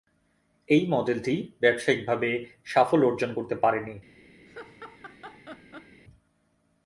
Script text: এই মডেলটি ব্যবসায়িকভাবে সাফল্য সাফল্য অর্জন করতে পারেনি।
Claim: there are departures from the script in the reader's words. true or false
true